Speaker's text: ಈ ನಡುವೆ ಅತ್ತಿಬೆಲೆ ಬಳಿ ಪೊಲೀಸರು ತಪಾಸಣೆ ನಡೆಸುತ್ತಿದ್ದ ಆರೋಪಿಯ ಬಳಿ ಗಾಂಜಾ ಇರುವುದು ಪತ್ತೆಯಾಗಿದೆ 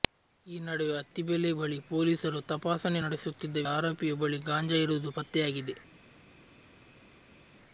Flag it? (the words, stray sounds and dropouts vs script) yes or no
no